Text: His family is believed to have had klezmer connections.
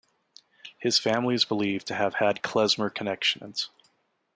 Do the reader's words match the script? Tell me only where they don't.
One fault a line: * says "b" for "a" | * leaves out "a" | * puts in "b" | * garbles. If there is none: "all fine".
all fine